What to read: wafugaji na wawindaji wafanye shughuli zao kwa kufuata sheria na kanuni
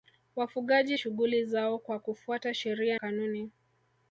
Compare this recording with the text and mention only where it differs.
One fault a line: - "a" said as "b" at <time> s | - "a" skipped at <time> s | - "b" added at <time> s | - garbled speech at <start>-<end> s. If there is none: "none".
- "na wawindaji wafanye" skipped at 1.0 s
- "na" skipped at 3.0 s